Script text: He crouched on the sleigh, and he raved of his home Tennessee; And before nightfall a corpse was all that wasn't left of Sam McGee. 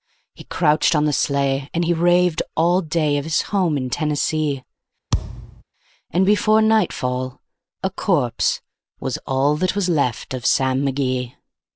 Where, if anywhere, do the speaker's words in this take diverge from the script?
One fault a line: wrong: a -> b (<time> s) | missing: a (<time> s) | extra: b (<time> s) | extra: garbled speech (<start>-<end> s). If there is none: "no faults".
extra: all day (2.5 s)
extra: in (3.8 s)
wrong: wasn't -> was (9.7 s)